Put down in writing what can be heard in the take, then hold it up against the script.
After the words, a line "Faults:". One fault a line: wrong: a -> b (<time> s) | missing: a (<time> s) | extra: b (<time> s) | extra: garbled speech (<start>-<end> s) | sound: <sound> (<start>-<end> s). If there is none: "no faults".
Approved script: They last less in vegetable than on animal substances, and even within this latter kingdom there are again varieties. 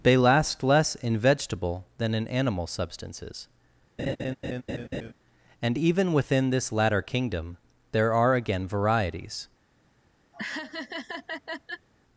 They last less in vegetable than in animal substances, and even within this latter kingdom there are again varieties.
Faults:
wrong: on -> in (2.1 s)
sound: laugh (4.0-5.1 s)
sound: laugh (10.3-11.9 s)